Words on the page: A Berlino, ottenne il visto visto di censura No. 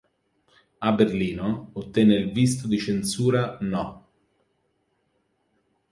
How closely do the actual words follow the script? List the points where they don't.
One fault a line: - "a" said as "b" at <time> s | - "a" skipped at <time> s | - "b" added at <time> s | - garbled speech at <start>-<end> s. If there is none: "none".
- "visto" skipped at 2.7 s